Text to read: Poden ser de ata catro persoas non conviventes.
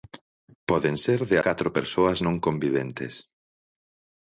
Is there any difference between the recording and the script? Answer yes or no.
yes